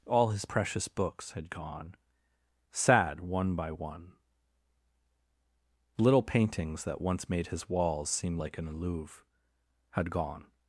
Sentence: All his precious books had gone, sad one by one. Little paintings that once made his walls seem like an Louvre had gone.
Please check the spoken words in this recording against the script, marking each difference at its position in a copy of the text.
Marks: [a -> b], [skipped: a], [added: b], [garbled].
All his precious books had gone, sad one by one. Little paintings that once made his walls seem like an Louvre had gone.